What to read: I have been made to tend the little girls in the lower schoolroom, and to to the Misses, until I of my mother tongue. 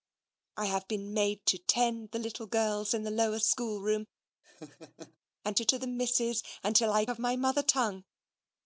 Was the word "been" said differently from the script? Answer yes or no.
no